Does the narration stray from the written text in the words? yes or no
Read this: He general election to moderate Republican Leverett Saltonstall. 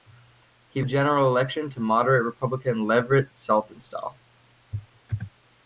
no